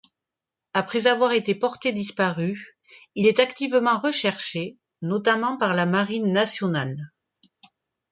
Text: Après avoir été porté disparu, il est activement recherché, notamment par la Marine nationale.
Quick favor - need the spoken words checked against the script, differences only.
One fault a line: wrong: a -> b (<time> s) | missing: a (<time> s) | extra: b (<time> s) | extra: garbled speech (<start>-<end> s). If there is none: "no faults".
no faults